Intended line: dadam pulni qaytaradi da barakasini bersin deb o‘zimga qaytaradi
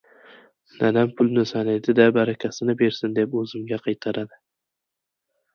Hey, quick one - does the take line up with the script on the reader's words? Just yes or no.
no